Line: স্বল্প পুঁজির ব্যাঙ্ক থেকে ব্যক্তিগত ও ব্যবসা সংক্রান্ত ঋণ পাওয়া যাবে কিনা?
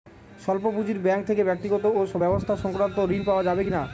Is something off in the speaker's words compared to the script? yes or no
no